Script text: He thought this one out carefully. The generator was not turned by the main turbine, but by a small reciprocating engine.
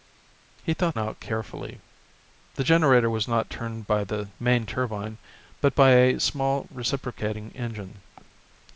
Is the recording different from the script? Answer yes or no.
yes